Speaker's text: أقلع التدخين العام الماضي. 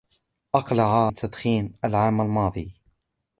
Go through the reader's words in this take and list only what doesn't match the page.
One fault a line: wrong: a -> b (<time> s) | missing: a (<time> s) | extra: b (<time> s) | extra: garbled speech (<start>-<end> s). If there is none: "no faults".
no faults